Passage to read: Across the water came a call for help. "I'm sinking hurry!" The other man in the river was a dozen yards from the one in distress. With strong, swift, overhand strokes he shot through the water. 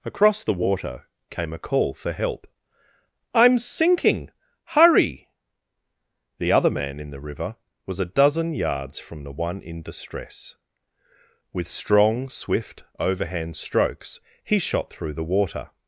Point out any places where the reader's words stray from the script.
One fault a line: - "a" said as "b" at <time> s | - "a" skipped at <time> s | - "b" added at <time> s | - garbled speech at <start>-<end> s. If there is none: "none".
none